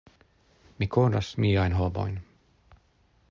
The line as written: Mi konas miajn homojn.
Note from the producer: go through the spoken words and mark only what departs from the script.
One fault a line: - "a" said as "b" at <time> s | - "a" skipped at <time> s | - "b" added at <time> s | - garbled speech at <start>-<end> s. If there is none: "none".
none